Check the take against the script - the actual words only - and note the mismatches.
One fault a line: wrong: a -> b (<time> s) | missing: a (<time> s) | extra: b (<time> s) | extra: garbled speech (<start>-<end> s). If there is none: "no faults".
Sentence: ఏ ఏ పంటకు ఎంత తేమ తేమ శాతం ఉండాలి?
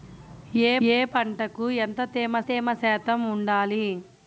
no faults